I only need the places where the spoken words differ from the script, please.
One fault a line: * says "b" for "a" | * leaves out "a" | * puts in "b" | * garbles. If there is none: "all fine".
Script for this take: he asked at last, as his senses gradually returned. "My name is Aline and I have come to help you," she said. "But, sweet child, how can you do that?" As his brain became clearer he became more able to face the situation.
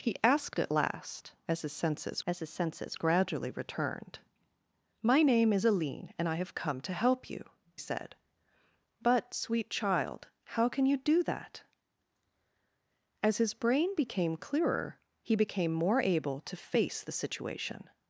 * puts in "as his senses"
* leaves out "she"